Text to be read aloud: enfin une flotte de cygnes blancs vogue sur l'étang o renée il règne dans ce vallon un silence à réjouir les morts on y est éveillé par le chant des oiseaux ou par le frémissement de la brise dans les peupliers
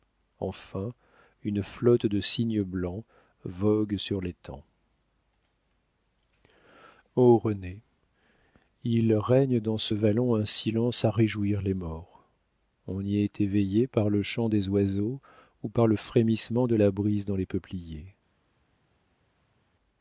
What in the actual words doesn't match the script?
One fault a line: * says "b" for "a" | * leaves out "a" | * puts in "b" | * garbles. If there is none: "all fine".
all fine